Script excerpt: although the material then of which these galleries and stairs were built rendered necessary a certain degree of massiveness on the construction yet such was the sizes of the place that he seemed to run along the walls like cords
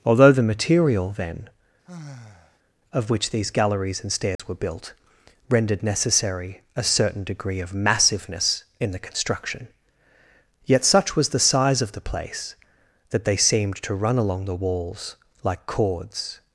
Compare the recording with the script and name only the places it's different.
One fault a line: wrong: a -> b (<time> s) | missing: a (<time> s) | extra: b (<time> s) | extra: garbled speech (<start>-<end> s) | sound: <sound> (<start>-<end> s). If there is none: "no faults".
sound: sigh (1.8-2.6 s)
sound: dropout (4.4-4.4 s)
wrong: on -> in (8.8 s)
wrong: sizes -> size (11.4 s)
wrong: he -> they (13.2 s)